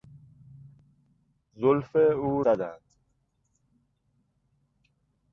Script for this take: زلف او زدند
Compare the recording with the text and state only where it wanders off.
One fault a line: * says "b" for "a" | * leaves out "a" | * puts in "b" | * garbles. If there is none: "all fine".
all fine